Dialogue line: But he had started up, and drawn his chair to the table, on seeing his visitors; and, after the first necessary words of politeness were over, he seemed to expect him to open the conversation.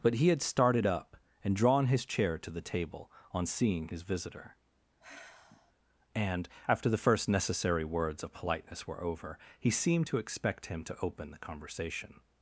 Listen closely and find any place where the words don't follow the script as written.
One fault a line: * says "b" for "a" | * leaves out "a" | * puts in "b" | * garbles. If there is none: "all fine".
* says "visitor" for "visitors"